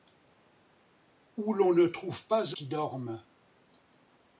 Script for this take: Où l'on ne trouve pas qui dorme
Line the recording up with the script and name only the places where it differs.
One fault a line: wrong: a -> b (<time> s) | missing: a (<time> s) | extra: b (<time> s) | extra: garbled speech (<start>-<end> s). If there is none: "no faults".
no faults